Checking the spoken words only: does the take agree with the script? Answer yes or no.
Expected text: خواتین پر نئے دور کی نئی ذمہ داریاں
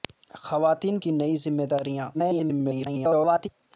no